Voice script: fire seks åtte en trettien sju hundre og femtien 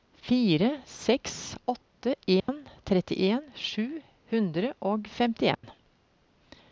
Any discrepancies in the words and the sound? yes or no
yes